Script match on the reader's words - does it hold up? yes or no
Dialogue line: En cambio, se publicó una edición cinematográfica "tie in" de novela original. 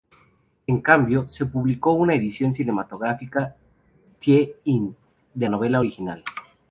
yes